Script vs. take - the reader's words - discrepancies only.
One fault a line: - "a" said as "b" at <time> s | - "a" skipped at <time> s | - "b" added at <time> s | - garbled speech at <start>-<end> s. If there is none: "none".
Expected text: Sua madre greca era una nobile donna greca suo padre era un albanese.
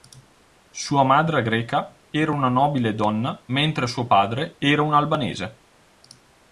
- "greca" said as "mentre" at 3.5 s